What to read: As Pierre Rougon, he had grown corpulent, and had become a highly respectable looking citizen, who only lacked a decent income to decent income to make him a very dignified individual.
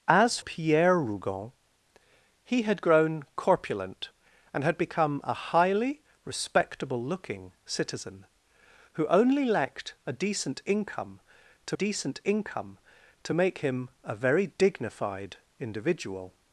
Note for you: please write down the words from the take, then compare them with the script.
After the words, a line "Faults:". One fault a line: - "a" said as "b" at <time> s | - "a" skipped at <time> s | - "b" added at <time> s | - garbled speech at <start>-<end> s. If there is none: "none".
As Pierre Rougon, he had grown corpulent, and had become a highly respectable looking citizen, who only lacked a decent income to decent income to make him a very dignified individual.
Faults:
none